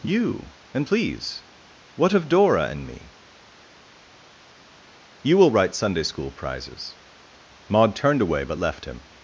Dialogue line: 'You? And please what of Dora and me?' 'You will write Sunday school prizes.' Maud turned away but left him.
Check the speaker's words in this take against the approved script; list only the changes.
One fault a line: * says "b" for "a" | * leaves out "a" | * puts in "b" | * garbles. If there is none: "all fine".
all fine